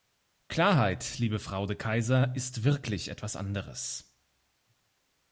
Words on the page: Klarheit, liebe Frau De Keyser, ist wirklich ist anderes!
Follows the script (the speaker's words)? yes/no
no